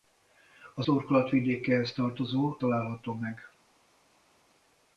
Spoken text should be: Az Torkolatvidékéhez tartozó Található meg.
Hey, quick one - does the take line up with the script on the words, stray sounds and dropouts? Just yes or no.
yes